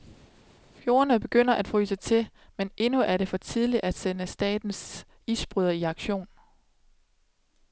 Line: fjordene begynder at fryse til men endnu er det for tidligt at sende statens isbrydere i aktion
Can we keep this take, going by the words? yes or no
yes